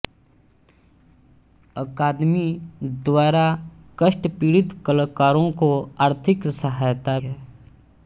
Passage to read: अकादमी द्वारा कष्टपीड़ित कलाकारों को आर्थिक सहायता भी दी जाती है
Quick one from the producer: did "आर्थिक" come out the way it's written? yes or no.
yes